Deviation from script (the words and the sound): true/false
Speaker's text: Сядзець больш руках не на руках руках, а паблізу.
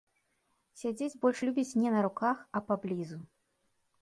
true